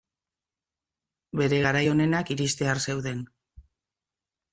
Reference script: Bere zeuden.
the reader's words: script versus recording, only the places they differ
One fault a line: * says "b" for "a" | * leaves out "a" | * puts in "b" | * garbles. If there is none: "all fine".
* puts in "garai onenak iristear"